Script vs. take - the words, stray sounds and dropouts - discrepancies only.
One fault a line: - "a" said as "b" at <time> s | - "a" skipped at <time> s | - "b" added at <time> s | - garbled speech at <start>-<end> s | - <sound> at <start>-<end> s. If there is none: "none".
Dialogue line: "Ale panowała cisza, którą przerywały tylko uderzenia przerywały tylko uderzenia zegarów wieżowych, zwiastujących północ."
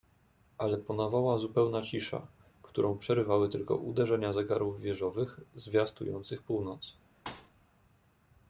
- "zupełna" added at 1.4 s
- "przerywały tylko uderzenia" skipped at 4.3 s
- thud at 7.3-7.5 s